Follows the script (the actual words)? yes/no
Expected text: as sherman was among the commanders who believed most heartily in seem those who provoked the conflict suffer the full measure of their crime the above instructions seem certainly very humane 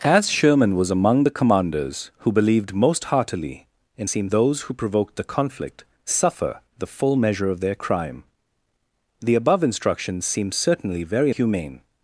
yes